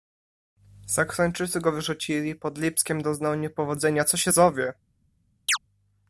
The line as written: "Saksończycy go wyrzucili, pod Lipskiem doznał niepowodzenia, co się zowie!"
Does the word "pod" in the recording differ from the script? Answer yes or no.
no